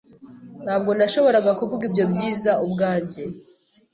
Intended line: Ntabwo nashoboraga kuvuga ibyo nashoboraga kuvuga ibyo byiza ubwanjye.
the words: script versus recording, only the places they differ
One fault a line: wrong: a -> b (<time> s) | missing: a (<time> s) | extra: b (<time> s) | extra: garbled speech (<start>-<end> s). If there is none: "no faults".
missing: nashoboraga kuvuga ibyo (2.0 s)